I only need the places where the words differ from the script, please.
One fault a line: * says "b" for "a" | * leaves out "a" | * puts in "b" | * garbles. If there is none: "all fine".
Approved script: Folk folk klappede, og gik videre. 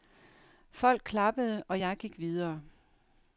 * leaves out "folk"
* puts in "jeg"